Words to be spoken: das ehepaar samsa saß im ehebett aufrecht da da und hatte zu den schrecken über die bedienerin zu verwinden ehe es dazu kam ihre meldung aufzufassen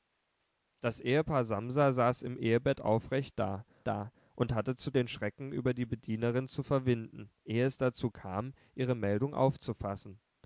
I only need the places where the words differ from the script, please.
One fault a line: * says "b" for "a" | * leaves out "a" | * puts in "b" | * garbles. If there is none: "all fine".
all fine